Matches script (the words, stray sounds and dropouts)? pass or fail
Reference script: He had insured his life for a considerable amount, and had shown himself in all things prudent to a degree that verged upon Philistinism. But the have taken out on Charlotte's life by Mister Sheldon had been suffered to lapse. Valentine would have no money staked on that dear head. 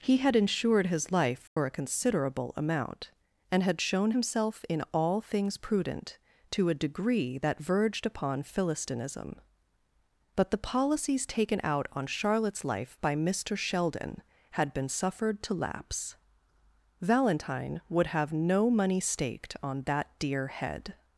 fail